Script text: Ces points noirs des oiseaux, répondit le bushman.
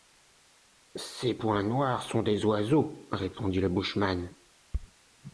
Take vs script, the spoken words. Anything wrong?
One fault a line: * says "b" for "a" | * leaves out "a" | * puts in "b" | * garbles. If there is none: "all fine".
* puts in "sont"